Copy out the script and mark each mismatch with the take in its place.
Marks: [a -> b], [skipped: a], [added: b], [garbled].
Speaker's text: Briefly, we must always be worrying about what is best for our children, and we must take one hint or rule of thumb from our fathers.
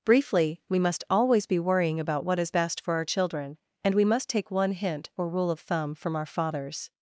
Briefly, we must always be worrying about what is best for our children, and we must take one hint or rule of thumb from our fathers.